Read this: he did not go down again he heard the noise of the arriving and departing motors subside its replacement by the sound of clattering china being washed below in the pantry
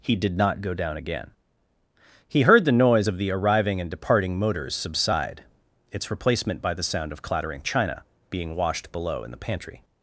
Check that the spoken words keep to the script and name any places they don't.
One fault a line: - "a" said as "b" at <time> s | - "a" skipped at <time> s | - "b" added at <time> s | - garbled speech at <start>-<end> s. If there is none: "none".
none